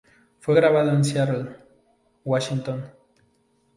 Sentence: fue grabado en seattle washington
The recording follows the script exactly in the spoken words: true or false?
true